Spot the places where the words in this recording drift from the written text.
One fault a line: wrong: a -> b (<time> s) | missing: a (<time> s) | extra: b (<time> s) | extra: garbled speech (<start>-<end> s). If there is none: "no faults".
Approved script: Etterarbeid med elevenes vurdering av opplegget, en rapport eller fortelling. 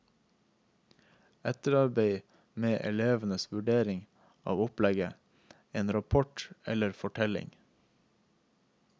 no faults